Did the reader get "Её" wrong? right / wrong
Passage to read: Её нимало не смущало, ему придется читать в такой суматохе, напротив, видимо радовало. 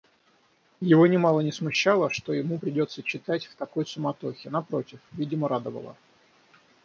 wrong